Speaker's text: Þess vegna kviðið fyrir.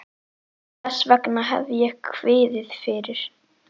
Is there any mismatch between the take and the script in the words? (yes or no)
yes